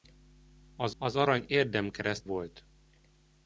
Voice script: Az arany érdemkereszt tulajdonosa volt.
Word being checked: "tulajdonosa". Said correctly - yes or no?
no